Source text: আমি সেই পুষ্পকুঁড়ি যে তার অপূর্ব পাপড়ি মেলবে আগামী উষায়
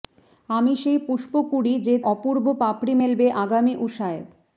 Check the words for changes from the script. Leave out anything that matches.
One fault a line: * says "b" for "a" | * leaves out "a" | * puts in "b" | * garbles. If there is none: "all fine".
* leaves out "তার"